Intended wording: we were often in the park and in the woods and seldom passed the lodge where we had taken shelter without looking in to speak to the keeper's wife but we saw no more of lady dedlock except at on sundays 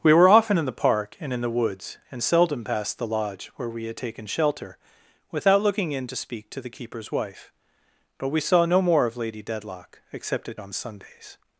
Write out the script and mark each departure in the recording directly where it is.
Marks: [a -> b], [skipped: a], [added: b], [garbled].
we were often in the park and in the woods and seldom passed the lodge where we had taken shelter without looking in to speak to the keeper's wife but we saw no more of lady dedlock except at on sundays